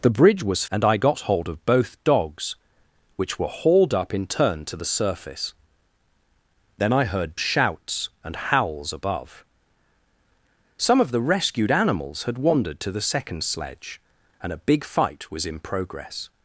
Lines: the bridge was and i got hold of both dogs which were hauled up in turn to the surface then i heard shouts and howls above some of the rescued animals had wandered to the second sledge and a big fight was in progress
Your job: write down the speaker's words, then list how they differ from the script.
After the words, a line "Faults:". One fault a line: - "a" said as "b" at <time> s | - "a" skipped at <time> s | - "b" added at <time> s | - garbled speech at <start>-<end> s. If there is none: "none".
the bridge was and i got hold of both dogs which were hauled up in turn to the surface then i heard shouts and howls above some of the rescued animals had wandered to the second sledge and a big fight was in progress
Faults:
none